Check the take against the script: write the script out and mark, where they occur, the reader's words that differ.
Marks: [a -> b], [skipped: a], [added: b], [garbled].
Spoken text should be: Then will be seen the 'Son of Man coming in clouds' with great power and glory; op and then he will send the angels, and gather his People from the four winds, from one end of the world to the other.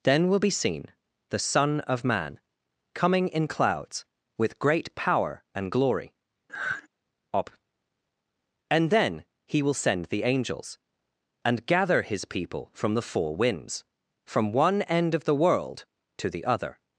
Then will be seen the 'Son of Man coming in clouds' with great power and glory; op and then he will send the angels, and gather his People from the four winds, from one end of the world to the other.